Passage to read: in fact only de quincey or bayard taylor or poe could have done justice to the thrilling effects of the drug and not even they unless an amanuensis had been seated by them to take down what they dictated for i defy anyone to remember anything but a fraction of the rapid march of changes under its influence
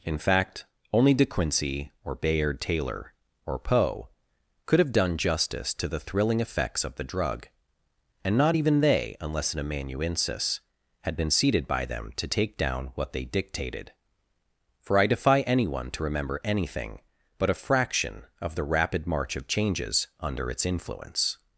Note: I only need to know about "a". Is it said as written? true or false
true